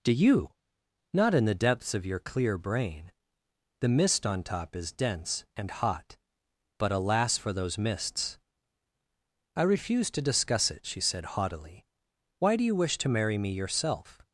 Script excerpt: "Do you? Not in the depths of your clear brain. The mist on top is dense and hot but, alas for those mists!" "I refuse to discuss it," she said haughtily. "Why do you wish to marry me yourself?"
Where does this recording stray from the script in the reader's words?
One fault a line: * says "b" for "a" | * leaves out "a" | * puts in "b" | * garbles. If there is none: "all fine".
all fine